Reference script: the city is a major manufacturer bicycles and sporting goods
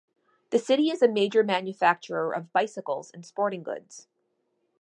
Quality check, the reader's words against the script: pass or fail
fail